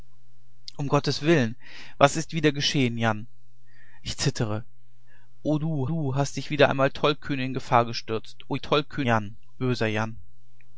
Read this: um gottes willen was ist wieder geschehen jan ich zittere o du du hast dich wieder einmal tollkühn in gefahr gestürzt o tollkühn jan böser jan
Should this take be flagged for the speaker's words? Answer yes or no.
no